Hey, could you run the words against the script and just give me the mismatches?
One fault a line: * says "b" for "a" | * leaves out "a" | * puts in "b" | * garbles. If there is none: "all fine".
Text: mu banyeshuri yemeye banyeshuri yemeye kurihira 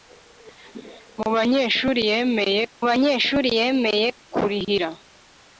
all fine